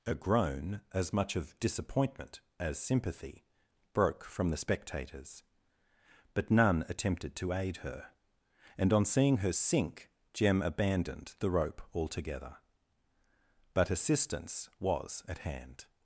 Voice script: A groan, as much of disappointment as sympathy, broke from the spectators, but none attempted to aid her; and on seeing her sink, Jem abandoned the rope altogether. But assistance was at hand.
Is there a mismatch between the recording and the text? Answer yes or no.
no